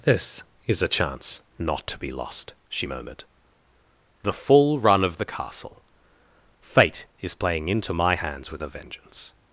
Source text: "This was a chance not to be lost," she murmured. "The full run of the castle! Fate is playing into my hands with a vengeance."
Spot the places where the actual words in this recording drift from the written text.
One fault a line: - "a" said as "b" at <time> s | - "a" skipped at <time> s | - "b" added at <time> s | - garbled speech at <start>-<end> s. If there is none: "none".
- "was" said as "is" at 0.7 s